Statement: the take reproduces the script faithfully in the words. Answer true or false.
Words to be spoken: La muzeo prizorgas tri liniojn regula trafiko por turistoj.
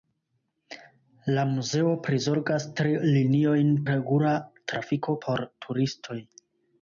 true